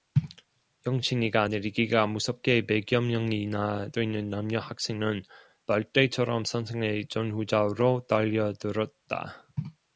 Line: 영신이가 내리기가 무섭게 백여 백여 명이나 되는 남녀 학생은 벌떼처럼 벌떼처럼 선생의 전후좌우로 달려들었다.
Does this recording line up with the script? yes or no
no